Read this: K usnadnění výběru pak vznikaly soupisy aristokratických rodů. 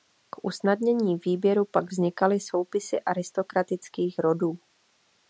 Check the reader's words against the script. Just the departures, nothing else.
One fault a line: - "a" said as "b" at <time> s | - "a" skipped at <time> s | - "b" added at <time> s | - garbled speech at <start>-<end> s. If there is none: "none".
none